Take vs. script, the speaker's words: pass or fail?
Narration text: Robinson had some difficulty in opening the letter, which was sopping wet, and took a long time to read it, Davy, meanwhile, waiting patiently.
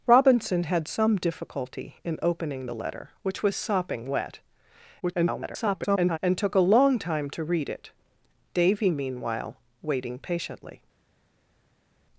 fail